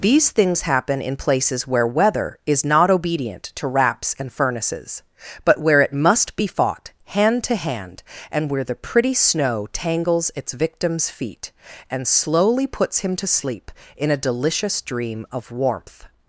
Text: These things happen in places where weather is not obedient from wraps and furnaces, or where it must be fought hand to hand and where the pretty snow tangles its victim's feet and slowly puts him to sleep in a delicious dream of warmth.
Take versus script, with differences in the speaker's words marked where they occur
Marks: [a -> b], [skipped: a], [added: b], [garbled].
These things happen in places where weather is not obedient [from -> to] wraps and furnaces, [or -> but] where it must be fought hand to hand and where the pretty snow tangles its victim's feet and slowly puts him to sleep in a delicious dream of warmth.